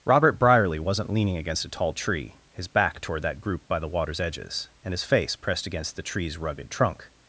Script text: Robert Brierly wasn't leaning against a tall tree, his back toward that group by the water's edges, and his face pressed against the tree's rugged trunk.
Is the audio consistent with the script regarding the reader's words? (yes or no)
yes